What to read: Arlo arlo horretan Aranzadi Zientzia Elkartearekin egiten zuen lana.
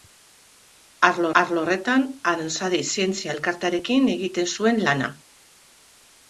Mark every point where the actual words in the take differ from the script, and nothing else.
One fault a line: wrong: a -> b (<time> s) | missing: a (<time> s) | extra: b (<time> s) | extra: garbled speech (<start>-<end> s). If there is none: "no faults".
no faults